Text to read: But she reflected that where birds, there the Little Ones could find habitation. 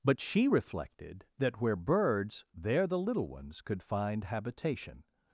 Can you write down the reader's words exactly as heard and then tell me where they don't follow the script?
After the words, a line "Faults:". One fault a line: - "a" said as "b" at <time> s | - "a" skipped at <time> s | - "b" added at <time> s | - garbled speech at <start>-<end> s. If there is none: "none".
But she reflected that where birds, there the Little Ones could find habitation.
Faults:
none